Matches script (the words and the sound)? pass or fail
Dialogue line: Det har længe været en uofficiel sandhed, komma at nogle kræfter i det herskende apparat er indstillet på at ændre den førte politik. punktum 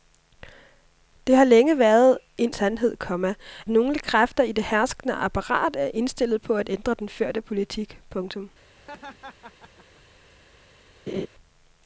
fail